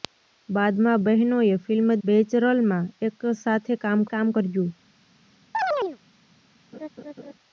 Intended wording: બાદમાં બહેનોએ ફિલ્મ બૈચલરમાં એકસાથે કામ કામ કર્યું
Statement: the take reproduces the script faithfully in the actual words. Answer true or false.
true